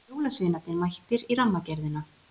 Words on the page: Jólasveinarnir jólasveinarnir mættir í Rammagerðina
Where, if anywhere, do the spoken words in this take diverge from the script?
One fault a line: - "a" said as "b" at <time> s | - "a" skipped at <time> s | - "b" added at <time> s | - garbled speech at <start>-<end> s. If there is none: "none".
- "jólasveinarnir" skipped at 0.8 s